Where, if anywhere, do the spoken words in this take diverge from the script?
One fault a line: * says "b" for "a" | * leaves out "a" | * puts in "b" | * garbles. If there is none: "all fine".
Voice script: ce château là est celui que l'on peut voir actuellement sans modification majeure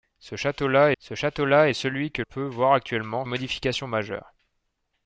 * puts in "ce château là"
* leaves out "l'on"
* leaves out "sans"